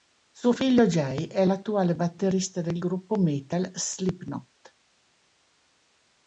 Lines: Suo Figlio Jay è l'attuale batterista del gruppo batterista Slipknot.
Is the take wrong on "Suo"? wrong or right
right